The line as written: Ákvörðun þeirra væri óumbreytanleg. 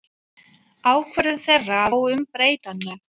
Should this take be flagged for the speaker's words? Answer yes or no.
yes